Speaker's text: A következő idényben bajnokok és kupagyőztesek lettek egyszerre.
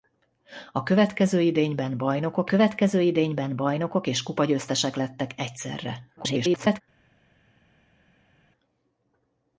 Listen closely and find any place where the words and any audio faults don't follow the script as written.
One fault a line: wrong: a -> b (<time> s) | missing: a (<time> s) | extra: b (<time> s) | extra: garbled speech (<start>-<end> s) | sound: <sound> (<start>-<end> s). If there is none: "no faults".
extra: következő idényben bajnokok (2.5 s)
extra: garbled speech (6.2-6.8 s)